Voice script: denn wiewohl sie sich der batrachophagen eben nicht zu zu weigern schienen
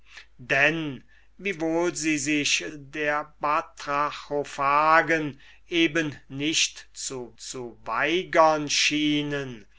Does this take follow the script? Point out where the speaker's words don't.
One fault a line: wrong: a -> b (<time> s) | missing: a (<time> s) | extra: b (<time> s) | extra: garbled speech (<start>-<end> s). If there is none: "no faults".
no faults